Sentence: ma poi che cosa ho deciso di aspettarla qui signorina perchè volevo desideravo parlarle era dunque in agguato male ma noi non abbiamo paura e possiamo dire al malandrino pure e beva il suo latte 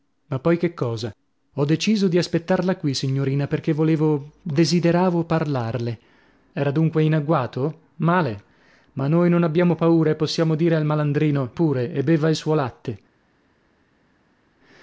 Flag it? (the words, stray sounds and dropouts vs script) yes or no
no